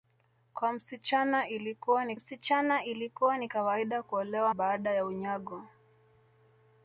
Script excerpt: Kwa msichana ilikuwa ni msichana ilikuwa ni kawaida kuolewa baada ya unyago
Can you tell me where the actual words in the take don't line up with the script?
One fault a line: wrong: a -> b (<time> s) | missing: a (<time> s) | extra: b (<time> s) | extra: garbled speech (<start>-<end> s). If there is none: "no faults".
no faults